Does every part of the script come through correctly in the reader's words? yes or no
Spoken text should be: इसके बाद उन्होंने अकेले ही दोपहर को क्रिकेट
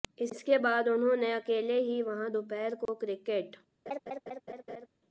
no